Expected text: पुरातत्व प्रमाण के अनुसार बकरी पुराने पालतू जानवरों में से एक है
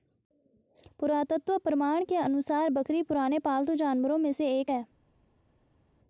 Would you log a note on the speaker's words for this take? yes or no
no